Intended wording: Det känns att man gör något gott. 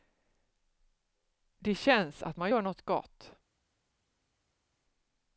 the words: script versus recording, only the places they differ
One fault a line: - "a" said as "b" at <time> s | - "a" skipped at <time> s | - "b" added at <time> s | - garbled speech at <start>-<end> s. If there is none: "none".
none